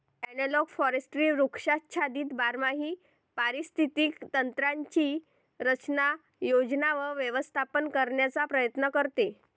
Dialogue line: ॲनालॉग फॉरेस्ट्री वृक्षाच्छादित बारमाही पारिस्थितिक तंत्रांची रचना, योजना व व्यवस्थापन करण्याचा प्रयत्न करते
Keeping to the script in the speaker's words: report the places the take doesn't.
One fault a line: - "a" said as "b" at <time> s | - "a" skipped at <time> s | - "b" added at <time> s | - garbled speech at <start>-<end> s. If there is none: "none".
none